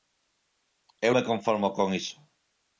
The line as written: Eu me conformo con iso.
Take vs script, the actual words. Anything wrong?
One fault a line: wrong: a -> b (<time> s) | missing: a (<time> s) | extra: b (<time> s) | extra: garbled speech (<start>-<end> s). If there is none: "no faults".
no faults